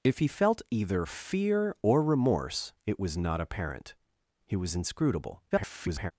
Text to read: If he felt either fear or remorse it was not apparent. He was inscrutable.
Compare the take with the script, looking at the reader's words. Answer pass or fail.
fail